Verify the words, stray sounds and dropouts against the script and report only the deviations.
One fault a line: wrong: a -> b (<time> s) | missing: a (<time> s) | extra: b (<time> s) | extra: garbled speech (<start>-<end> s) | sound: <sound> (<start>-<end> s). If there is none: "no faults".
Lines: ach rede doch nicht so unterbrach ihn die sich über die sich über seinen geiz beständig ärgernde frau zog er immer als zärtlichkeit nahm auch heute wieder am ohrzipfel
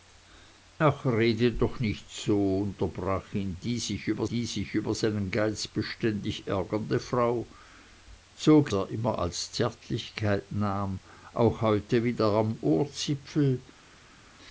no faults